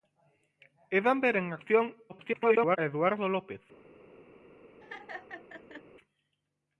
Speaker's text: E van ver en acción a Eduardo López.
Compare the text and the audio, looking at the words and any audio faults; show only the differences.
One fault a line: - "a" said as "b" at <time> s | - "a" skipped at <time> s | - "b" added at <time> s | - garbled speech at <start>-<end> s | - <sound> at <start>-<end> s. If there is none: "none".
- garbled speech at 2.1-2.8 s
- laugh at 4.8-5.8 s